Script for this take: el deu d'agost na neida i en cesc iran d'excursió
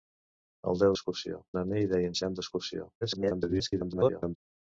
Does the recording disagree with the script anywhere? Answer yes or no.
yes